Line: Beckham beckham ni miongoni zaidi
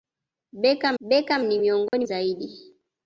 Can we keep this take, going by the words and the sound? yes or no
no